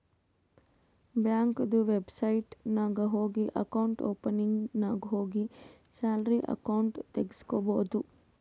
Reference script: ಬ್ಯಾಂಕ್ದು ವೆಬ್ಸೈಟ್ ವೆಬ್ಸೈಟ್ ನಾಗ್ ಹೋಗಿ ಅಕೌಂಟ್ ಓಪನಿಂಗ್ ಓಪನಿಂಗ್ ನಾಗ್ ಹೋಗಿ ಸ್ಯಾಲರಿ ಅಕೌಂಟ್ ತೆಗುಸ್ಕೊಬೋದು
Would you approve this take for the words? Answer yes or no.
no